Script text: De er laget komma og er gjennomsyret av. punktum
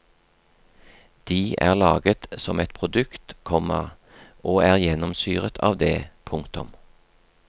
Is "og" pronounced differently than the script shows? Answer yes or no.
no